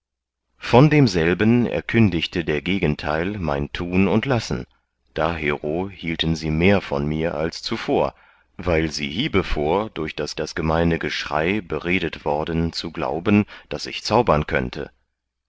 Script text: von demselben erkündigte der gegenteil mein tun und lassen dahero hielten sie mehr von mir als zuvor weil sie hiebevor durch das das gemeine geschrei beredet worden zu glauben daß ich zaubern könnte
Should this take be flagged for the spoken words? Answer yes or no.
no